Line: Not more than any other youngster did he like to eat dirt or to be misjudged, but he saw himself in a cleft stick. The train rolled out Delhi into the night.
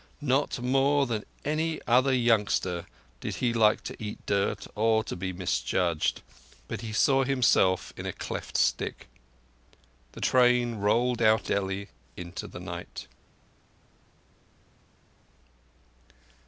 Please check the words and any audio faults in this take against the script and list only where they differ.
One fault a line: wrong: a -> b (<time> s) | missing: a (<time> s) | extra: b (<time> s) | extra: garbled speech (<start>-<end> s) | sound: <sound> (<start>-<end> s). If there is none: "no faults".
no faults